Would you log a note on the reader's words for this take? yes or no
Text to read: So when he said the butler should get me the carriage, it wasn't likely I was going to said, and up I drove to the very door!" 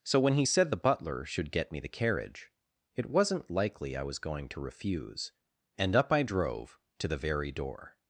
yes